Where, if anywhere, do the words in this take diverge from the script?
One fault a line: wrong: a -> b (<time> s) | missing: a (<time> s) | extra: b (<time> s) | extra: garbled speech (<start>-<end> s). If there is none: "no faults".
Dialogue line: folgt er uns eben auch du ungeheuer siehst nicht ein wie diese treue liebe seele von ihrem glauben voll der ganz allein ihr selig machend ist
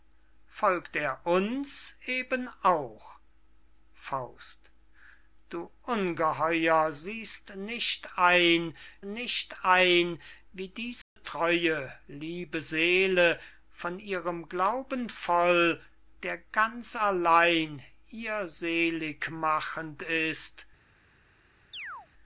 extra: nicht ein (9.0 s)